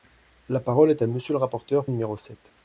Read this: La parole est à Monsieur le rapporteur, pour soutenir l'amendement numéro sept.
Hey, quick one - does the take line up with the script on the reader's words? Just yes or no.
no